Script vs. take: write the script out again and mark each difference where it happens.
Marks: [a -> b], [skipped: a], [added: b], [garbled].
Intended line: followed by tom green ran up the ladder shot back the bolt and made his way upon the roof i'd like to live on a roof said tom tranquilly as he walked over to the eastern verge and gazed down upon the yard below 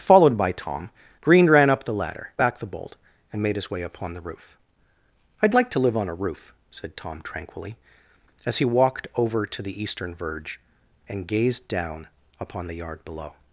followed by tom green ran up the ladder [skipped: shot] back the bolt and made his way upon the roof i'd like to live on a roof said tom tranquilly as he walked over to the eastern verge and gazed down upon the yard below